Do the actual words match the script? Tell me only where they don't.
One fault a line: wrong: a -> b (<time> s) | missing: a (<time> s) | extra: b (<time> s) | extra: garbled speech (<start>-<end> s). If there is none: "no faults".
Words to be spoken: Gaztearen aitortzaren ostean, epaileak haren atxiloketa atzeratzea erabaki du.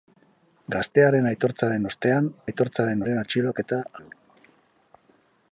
wrong: epaileak -> aitortzaren (2.5 s)
missing: atzeratzea erabaki (3.8 s)